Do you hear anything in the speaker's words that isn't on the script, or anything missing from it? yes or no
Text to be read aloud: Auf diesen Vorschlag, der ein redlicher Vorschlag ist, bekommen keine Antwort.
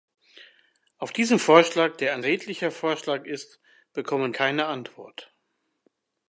no